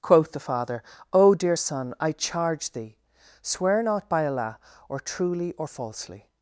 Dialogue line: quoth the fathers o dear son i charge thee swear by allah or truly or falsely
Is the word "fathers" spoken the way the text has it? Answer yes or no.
no